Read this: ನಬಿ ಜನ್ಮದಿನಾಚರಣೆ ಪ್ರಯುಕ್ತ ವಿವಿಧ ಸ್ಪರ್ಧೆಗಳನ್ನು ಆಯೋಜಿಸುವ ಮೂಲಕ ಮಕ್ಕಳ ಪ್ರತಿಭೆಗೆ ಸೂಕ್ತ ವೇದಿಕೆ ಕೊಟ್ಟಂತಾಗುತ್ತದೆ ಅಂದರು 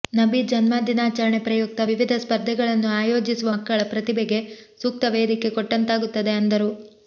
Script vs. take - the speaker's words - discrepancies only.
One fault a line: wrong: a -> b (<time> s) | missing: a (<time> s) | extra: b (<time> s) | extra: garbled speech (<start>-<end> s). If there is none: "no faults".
missing: ಮೂಲಕ (3.5 s)